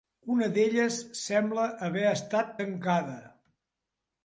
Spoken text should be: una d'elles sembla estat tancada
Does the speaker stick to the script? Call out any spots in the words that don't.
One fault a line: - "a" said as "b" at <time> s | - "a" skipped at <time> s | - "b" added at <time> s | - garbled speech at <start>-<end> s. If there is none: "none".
- "haver" added at 1.9 s